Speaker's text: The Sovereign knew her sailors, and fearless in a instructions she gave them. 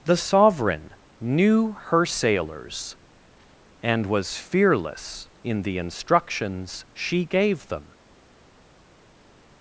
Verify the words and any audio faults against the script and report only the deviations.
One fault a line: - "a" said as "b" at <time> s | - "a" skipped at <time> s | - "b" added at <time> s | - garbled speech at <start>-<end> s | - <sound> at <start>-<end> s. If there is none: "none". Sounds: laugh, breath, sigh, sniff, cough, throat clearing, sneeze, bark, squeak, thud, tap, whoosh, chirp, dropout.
- "was" added at 4.1 s
- "a" said as "the" at 5.6 s